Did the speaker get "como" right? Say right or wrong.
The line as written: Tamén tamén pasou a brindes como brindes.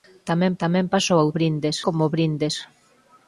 right